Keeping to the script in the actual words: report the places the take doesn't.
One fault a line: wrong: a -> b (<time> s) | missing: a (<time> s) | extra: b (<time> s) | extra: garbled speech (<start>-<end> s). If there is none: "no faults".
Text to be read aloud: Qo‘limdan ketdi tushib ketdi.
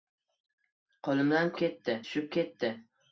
no faults